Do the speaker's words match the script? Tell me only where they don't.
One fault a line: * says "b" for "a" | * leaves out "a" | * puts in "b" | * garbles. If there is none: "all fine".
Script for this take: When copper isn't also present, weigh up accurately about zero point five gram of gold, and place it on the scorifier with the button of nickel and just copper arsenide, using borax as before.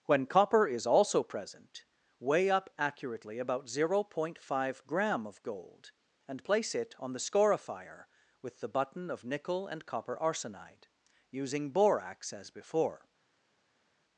* says "is" for "isn't"
* leaves out "just"